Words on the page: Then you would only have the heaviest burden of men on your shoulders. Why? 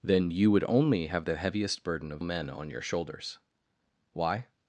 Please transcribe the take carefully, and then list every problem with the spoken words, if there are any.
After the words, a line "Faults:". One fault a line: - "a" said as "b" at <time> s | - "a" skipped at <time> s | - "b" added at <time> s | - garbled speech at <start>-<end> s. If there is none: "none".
Then you would only have the heaviest burden of men on your shoulders. Why?
Faults:
none